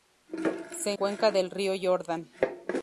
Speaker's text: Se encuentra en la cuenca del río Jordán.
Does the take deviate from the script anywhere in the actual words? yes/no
yes